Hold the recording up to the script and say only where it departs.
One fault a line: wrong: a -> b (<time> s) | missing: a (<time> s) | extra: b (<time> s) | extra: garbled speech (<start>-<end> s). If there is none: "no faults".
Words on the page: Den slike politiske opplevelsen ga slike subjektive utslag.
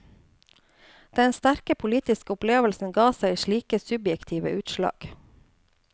wrong: slike -> sterke (1.4 s)
extra: seg (3.2 s)